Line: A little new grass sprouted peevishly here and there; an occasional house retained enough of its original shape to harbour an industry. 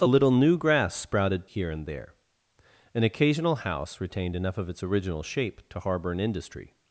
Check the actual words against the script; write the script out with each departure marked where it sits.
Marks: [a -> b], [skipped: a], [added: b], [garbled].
A little new grass sprouted [skipped: peevishly] here and there; an occasional house retained enough of its original shape to harbour an industry.